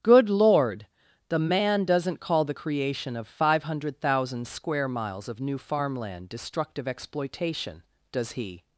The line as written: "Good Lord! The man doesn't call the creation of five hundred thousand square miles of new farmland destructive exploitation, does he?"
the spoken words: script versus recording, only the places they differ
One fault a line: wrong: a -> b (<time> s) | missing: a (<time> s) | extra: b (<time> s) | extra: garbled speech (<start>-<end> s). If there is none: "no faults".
no faults